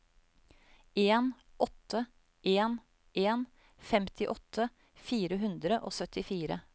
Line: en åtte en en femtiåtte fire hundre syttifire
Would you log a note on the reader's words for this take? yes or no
yes